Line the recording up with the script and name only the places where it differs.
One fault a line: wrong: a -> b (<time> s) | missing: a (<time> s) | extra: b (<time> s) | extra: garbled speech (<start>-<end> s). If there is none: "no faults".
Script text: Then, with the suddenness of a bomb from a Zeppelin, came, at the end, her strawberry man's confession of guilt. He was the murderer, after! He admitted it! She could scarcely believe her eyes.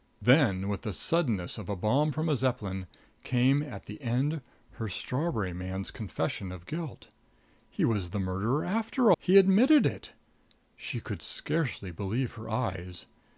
no faults